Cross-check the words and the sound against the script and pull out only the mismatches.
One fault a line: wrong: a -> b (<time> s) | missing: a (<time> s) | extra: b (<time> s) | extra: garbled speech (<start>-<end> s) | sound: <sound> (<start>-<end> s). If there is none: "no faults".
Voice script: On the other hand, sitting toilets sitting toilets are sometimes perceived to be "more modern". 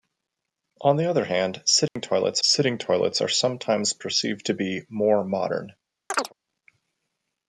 sound: dropout (1.9-2.0 s)
sound: chirp (6.1-6.3 s)